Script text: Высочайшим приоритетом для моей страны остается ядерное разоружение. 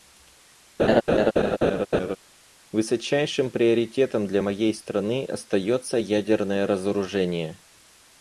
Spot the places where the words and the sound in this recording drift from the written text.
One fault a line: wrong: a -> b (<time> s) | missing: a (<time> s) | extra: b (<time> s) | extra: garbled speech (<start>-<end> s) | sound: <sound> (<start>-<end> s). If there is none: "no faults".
sound: laugh (0.8-2.2 s)